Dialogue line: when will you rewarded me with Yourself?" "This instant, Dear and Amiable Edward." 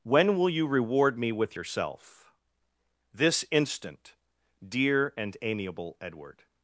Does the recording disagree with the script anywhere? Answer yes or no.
yes